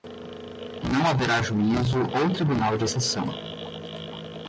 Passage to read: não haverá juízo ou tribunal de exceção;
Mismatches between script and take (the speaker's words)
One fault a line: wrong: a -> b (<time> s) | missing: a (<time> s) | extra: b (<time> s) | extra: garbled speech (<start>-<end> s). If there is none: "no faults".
no faults